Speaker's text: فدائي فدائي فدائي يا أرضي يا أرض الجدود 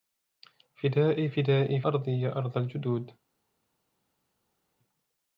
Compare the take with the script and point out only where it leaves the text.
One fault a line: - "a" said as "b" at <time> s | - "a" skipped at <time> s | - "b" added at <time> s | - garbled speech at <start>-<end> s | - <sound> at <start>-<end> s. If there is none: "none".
- "فدائي يا" skipped at 1.8 s